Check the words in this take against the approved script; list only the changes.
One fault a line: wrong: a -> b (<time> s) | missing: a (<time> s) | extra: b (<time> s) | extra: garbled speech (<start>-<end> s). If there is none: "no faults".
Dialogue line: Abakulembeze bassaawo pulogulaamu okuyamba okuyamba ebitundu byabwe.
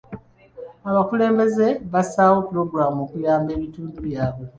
missing: okuyamba (3.5 s)